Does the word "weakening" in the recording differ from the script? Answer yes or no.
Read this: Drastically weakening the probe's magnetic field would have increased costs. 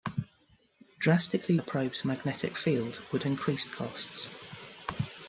yes